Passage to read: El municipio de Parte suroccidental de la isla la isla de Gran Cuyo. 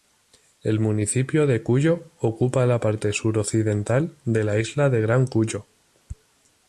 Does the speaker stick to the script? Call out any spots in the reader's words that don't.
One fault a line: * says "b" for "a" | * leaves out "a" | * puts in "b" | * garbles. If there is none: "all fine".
* puts in "Cuyo ocupa la"
* leaves out "la isla"